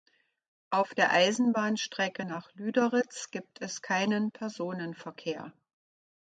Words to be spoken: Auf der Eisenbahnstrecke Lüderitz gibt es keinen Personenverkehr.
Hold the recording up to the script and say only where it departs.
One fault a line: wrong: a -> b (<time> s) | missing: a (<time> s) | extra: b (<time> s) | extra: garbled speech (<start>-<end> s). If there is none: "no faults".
extra: nach (2.2 s)